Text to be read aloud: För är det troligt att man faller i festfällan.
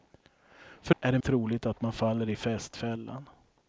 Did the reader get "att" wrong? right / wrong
right